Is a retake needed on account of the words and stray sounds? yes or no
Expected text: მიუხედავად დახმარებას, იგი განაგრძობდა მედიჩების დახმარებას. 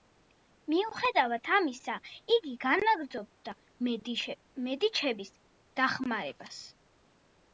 yes